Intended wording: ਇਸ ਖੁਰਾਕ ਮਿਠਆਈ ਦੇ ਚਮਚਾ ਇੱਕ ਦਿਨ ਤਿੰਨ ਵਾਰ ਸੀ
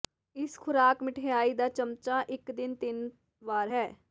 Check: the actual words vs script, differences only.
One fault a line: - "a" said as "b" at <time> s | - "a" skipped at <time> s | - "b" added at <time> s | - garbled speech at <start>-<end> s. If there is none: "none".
- "ਦੇ" said as "ਦਾ" at 1.5 s
- "ਸੀ" said as "ਹੈ" at 3.7 s